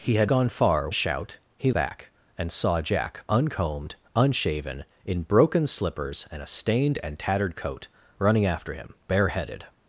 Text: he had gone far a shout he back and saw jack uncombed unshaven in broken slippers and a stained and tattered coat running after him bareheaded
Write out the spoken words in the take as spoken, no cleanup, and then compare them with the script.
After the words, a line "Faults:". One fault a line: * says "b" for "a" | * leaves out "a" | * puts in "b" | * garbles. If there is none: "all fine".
he had gone far a shout he back and saw jack uncombed unshaven in broken slippers and a stained and tattered coat running after him bareheaded
Faults:
all fine